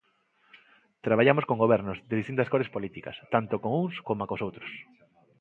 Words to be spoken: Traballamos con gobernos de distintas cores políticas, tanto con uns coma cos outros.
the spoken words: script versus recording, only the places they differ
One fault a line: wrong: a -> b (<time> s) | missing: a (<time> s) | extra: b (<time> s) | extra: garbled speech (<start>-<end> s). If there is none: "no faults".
no faults